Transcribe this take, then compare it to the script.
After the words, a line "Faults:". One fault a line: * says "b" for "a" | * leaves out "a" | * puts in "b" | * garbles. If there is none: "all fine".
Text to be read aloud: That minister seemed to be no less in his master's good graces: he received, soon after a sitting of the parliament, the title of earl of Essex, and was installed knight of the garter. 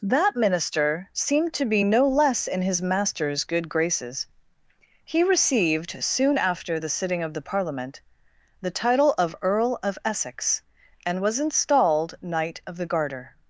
That minister seemed to be no less in his master's good graces: he received, soon after the sitting of the parliament, the title of earl of Essex, and was installed knight of the garter.
Faults:
* says "the" for "a"